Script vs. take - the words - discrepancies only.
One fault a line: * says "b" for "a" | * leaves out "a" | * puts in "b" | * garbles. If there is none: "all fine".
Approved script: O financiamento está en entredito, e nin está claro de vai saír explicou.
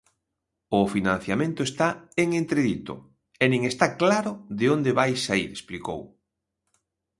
* puts in "onde"